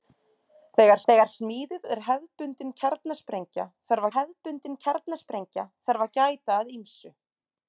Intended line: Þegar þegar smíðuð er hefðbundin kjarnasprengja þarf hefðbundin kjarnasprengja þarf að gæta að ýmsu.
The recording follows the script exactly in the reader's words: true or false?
true